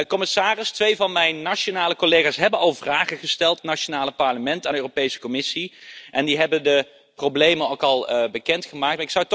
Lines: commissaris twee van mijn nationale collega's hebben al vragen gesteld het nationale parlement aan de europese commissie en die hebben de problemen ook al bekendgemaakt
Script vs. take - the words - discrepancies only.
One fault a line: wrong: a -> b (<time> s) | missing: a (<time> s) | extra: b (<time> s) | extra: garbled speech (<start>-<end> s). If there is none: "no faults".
no faults